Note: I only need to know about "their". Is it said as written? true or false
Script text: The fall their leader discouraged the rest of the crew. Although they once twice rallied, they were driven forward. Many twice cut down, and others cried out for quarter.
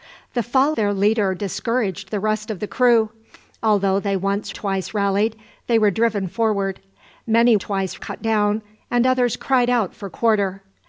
true